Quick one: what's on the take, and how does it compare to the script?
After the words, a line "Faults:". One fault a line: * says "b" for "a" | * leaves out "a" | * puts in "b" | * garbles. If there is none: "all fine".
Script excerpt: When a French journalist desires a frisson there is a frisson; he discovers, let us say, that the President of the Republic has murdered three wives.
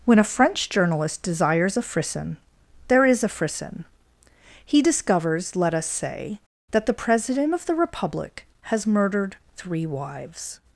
When a French journalist desires a frisson there is a frisson; he discovers, let us say, that the President of the Republic has murdered three wives.
Faults:
all fine